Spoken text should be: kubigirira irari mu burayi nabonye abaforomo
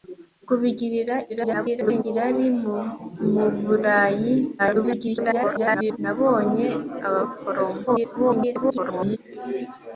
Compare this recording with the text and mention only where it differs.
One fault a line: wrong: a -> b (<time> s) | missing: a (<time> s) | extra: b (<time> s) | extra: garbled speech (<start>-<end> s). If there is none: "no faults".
extra: garbled speech (1.3-2.0 s)
extra: garbled speech (4.6-6.0 s)
extra: garbled speech (7.9-9.2 s)